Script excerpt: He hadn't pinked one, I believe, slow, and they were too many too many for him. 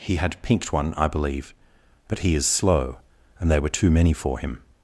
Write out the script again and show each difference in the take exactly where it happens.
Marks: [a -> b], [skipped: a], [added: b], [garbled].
He [hadn't -> had] pinked one, I believe, [added: but he is] slow, and they were too many [skipped: too many] for him.